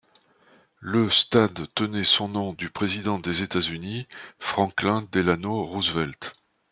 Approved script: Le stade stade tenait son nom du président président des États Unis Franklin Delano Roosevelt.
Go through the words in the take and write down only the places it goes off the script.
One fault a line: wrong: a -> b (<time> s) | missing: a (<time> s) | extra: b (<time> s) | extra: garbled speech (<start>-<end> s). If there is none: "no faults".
missing: stade (1.7 s)
missing: président (3.2 s)